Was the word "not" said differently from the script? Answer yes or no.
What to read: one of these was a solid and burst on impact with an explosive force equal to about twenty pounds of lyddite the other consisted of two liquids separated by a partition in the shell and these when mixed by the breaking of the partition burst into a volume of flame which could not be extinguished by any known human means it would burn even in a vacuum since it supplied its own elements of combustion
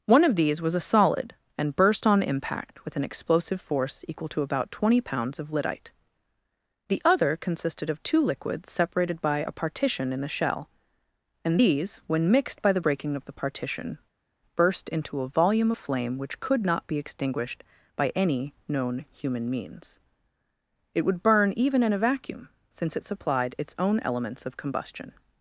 no